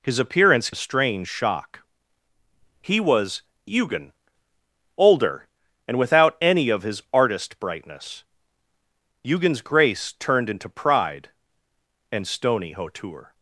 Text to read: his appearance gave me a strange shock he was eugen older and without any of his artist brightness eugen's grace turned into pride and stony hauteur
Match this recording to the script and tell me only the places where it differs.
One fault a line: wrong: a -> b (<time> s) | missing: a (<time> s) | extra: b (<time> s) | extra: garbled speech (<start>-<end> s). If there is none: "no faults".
missing: gave me (0.7 s)